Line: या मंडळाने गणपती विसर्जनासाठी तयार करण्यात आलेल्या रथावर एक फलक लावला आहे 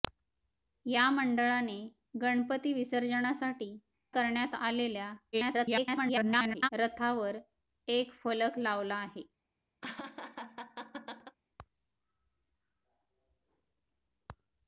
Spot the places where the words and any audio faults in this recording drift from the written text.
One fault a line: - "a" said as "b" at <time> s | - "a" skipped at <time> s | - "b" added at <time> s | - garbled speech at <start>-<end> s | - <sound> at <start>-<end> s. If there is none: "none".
- "तयार" skipped at 3.7 s
- garbled speech at 5.3-6.7 s
- laugh at 9.8-11.4 s